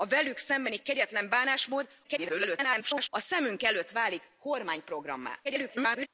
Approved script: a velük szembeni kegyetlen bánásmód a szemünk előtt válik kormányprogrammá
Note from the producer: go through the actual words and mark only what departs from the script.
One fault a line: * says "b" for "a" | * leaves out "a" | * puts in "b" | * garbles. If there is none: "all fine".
* garbles
* garbles